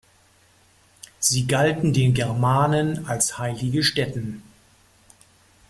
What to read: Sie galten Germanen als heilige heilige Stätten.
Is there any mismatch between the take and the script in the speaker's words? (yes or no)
yes